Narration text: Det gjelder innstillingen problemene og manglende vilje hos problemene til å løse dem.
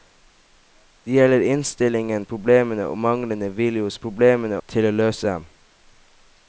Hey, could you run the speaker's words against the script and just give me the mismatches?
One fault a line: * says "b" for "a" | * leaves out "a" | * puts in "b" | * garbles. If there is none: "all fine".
all fine